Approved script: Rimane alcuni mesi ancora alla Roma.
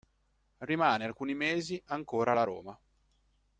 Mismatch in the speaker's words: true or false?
false